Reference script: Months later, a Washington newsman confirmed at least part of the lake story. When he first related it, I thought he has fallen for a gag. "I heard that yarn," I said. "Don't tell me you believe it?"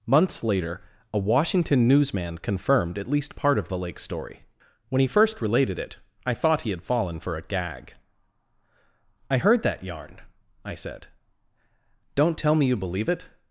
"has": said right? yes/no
no